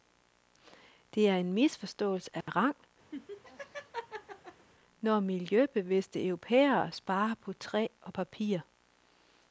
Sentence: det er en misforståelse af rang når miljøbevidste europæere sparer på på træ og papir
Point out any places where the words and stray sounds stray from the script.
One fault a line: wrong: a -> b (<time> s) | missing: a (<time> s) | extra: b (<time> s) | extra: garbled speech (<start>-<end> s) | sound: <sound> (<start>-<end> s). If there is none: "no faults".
sound: dropout (2.4-2.5 s)
sound: laugh (3.1-4.7 s)
missing: på (7.5 s)